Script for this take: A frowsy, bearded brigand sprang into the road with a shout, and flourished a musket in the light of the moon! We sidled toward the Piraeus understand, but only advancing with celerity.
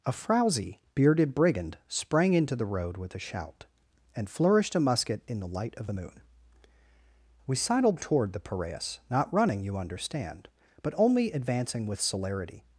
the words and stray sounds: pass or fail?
fail